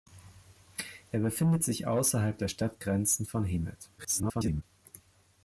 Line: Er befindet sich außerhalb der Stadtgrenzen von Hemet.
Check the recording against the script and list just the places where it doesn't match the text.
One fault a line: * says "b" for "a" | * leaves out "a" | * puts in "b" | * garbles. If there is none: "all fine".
* garbles